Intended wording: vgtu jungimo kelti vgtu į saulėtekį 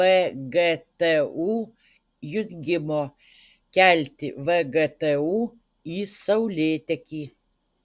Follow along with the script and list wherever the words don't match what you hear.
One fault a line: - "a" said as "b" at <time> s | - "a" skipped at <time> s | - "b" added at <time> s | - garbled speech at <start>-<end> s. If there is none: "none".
none